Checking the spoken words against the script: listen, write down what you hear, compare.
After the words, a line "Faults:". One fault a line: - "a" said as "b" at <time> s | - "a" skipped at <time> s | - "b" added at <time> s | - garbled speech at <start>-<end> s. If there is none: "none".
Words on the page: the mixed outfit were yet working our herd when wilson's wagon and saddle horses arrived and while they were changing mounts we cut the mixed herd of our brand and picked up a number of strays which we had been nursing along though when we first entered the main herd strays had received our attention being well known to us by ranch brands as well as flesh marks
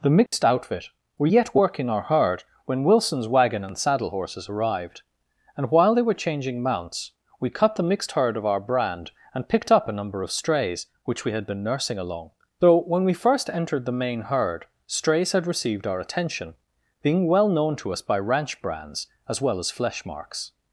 the mixed outfit were yet working our herd when wilson's wagon and saddle horses arrived and while they were changing mounts we cut the mixed herd of our brand and picked up a number of strays which we had been nursing along though when we first entered the main herd strays had received our attention being well known to us by ranch brands as well as flesh marks
Faults:
none